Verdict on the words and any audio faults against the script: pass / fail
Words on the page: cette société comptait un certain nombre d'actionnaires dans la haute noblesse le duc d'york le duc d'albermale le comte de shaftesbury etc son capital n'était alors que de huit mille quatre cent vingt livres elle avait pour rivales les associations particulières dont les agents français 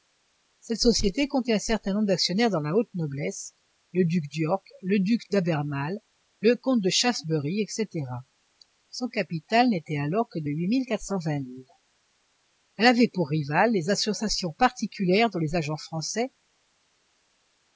pass